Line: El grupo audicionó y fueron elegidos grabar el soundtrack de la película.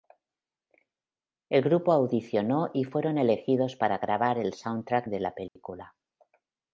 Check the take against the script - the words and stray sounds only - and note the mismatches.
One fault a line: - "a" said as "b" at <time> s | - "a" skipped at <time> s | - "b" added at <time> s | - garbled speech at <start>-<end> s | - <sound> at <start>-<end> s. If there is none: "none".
- "para" added at 3.8 s
- dropout at 5.5-5.6 s